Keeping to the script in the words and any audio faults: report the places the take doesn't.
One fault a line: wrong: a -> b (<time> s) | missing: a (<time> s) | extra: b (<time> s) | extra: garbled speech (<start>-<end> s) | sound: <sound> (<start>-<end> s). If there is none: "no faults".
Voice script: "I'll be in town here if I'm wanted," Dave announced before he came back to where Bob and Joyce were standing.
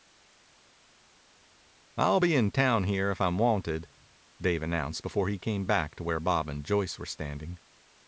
no faults